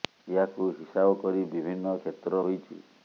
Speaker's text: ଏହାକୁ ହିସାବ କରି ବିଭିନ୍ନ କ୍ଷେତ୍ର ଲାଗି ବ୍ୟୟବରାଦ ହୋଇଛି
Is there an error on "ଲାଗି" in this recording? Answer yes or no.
yes